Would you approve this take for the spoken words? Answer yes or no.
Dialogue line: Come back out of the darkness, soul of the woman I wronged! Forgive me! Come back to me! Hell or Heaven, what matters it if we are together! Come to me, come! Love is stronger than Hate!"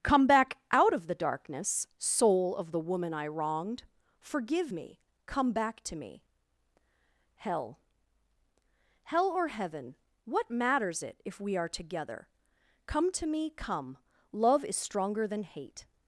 no